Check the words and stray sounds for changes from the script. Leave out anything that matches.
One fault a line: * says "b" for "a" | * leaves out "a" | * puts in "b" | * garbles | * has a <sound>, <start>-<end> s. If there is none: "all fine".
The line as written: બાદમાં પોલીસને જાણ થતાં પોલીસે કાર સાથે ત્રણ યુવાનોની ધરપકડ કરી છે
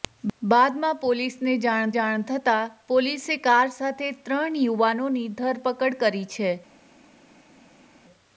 * puts in "જાણ"